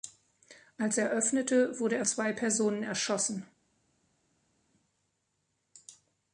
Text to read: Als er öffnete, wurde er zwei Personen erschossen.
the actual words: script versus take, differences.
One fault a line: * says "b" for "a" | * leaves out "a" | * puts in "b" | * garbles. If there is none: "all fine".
all fine